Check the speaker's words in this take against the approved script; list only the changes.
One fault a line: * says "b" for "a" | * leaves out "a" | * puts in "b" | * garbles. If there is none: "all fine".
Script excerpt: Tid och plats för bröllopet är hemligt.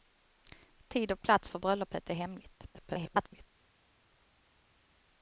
* garbles